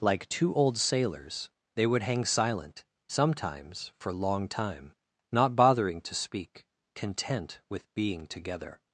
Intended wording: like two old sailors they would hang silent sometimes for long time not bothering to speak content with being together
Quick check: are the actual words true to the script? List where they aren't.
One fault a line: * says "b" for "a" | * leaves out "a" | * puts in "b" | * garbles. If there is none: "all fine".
all fine